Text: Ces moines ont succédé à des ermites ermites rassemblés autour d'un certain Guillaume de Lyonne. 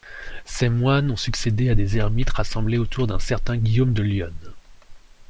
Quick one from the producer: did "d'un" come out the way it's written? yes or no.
yes